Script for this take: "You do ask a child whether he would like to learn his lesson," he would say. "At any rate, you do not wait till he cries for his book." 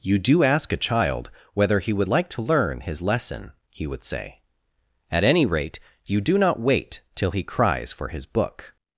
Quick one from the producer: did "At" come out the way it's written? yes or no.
yes